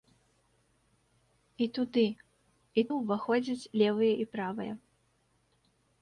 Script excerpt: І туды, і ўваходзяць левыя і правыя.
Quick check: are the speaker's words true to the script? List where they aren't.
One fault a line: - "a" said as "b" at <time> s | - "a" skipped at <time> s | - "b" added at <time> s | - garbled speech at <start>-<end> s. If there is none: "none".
none